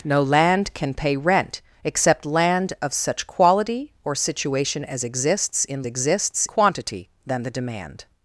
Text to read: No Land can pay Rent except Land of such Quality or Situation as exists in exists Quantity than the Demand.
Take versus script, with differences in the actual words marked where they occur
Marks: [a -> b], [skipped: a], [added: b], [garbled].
No Land can pay Rent except Land of such Quality or Situation as exists in exists Quantity than the Demand.